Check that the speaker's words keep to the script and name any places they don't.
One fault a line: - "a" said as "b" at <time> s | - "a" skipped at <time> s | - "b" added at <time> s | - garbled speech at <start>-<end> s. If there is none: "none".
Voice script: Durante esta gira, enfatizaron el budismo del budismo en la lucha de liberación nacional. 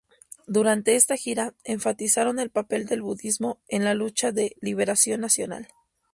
- "budismo" said as "papel" at 2.5 s